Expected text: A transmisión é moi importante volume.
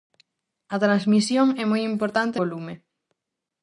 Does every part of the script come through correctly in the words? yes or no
yes